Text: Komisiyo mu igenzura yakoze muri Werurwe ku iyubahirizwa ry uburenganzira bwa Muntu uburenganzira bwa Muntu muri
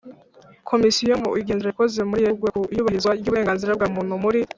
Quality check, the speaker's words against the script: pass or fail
fail